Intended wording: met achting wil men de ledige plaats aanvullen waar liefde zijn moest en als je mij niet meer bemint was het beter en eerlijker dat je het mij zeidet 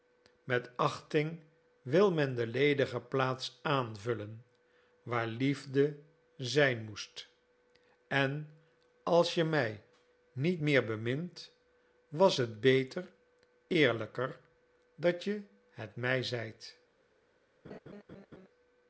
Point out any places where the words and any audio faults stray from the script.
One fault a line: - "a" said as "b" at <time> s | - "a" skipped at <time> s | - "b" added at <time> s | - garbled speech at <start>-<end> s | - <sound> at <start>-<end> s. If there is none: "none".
- "en" skipped at 13.1 s
- laugh at 17.6-18.5 s